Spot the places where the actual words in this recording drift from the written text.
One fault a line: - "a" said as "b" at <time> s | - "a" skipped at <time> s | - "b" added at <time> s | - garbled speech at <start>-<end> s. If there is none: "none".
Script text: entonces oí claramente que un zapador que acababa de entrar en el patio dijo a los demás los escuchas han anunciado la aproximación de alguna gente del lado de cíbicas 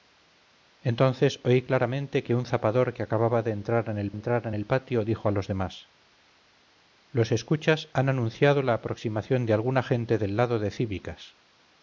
- "entrar en el" added at 4.1 s